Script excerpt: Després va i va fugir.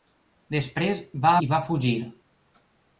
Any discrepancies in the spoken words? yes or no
no